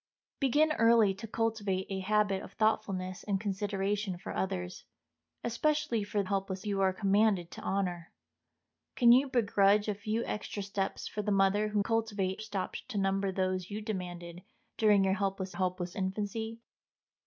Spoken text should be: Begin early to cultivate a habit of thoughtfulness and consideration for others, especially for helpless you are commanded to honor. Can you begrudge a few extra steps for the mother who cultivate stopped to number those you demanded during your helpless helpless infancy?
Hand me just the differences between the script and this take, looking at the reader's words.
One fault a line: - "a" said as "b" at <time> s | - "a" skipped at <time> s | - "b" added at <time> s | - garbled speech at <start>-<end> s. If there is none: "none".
none